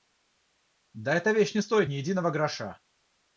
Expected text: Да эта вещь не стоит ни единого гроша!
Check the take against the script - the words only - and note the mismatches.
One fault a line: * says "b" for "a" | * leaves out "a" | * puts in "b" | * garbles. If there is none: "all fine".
all fine